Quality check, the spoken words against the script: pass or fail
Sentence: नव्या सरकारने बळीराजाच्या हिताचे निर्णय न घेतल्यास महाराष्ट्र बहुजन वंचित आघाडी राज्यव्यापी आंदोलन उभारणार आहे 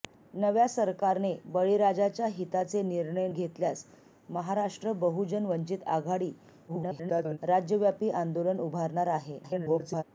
fail